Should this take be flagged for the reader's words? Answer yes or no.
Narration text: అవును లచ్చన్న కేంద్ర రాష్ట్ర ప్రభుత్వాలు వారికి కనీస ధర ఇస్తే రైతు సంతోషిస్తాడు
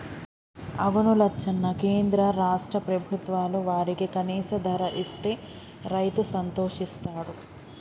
no